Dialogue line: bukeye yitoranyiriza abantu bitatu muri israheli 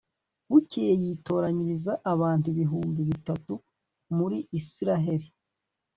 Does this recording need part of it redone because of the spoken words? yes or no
yes